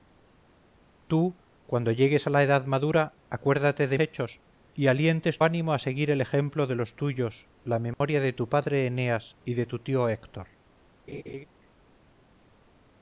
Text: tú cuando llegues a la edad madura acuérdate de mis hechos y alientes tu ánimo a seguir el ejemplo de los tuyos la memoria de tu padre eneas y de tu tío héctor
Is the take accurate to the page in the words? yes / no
no